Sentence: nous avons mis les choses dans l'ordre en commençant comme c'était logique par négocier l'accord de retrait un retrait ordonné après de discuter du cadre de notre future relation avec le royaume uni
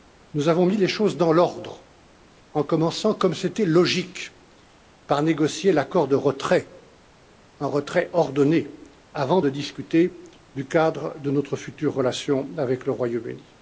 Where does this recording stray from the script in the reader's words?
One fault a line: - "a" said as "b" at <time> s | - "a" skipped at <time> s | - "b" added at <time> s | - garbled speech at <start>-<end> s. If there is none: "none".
- "après" said as "avant" at 9.1 s